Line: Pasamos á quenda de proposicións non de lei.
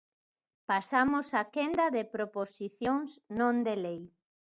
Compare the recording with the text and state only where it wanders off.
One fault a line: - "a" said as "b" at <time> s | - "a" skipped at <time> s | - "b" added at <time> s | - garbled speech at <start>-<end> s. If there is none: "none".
none